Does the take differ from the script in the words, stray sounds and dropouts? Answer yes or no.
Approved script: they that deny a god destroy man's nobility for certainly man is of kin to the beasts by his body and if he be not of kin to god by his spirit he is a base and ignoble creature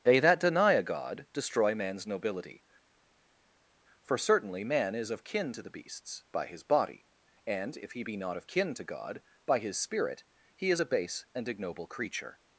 no